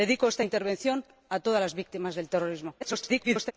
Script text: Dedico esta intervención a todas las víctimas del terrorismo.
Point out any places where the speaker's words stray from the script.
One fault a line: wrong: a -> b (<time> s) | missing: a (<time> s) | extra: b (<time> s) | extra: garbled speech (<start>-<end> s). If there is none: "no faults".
extra: garbled speech (2.8-3.5 s)